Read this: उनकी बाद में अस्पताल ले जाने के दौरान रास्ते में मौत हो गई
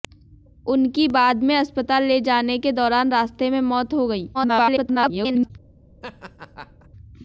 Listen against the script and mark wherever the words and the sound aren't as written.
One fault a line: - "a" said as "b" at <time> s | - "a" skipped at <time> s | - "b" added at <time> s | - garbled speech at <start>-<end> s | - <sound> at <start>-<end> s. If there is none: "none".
- garbled speech at 4.3-5.5 s
- laugh at 6.0-6.9 s